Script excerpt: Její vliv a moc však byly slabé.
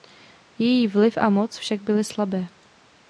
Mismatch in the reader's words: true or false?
false